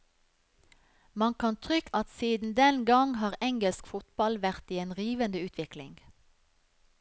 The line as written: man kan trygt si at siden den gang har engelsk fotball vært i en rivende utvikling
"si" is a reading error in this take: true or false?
true